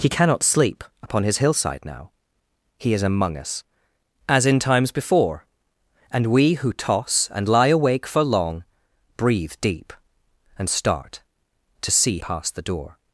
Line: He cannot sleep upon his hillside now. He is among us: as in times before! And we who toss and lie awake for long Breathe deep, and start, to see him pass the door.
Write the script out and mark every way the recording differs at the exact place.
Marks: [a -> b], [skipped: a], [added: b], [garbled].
He cannot sleep upon his hillside now. He is among us: as in times before! And we who toss and lie awake for long Breathe deep, and start, to see [skipped: him] pass the door.